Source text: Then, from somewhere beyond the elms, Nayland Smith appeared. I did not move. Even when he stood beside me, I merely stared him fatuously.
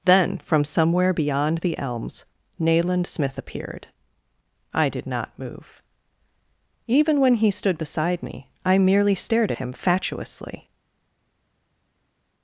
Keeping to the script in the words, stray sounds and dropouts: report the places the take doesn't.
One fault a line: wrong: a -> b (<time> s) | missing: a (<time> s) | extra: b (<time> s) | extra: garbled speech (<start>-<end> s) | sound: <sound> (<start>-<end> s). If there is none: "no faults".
no faults